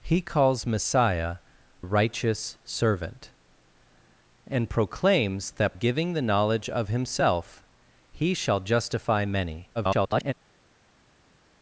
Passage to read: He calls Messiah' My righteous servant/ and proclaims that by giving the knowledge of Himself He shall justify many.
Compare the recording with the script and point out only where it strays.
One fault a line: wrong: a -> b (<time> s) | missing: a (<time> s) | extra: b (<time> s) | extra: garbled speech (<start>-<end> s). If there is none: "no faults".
missing: My (1.4 s)
missing: by (5.7 s)
extra: garbled speech (9.7-10.3 s)